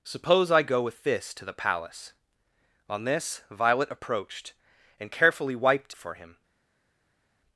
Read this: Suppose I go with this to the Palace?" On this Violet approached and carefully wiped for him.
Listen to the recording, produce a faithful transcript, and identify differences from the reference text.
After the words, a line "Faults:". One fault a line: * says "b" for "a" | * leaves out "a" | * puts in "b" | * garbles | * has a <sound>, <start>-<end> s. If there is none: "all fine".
Suppose I go with this to the Palace?" On this Violet approached and carefully wiped for him.
Faults:
all fine